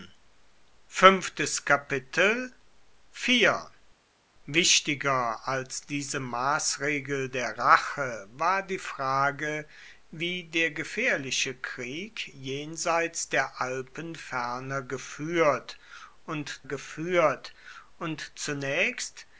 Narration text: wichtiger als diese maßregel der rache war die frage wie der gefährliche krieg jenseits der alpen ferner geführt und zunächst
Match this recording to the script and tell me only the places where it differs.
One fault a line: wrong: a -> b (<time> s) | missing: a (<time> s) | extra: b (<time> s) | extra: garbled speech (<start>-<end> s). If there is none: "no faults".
extra: geführt und (16.6 s)